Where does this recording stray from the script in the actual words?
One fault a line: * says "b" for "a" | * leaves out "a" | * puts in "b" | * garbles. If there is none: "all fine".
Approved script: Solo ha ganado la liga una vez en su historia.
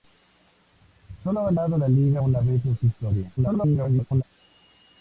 * garbles